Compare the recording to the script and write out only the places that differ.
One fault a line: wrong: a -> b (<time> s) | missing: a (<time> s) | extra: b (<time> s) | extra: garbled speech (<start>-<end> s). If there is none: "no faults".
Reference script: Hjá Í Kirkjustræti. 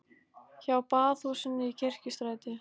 extra: Baðhúsinu (0.9 s)